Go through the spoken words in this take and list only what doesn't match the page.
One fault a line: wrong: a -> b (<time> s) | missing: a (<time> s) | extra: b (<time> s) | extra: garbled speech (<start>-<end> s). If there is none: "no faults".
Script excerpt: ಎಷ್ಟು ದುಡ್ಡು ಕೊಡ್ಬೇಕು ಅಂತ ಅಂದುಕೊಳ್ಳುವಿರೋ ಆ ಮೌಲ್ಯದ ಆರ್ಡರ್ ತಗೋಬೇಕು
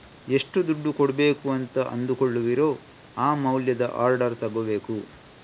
no faults